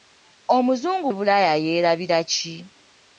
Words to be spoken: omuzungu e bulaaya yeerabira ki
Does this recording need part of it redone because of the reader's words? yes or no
no